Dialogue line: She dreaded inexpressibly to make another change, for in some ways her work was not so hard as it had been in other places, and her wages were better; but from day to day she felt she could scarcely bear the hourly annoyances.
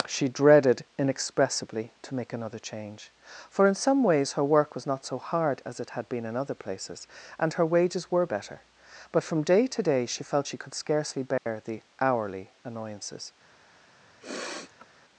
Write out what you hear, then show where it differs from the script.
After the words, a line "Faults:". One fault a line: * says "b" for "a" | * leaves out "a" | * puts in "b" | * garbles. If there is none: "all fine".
She dreaded inexpressibly to make another change, for in some ways her work was not so hard as it had been in other places, and her wages were better; but from day to day she felt she could scarcely bear the hourly annoyances.
Faults:
all fine